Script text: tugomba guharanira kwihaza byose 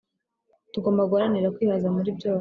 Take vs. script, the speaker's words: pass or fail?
fail